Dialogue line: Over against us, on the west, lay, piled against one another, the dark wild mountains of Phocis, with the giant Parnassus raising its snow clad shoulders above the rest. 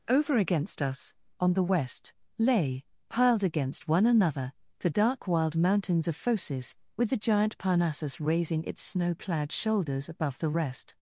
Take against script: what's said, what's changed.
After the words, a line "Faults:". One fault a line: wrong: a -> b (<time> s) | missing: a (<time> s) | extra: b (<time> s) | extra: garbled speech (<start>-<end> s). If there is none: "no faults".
Over against us, on the west, lay, piled against one another, the dark wild mountains of Phocis, with the giant Parnassus raising its snow clad shoulders above the rest.
Faults:
no faults